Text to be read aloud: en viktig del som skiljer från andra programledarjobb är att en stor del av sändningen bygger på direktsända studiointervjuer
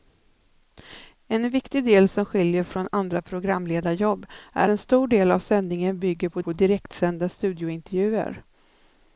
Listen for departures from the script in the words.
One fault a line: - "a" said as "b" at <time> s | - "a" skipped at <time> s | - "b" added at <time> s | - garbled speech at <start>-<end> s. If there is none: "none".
- "att" skipped at 4.7 s
- "på" added at 6.4 s